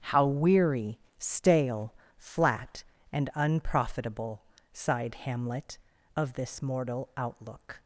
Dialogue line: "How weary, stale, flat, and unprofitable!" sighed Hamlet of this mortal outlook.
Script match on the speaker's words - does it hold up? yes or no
yes